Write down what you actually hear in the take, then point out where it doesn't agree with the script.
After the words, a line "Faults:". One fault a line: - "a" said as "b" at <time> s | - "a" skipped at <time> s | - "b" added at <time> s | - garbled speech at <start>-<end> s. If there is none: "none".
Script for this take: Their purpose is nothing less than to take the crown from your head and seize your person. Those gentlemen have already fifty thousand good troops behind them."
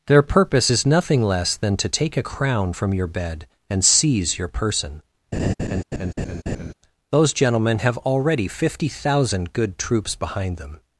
Their purpose is nothing less than to take a crown from your bed and seize your person. Those gentlemen have already fifty thousand good troops behind them."
Faults:
- "the" said as "a" at 2.2 s
- "head" said as "bed" at 3.1 s